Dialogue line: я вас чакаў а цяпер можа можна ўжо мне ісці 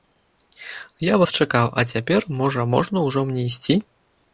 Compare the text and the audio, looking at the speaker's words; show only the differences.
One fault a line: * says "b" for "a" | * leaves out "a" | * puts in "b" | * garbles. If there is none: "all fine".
all fine